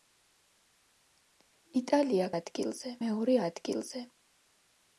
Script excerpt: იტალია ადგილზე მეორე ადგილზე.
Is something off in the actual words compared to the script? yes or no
no